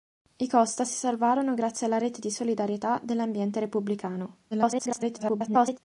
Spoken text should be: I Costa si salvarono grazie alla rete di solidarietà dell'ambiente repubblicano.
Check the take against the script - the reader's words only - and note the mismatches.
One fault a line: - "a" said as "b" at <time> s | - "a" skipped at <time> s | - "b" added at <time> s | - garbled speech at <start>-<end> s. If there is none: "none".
- garbled speech at 4.5-5.8 s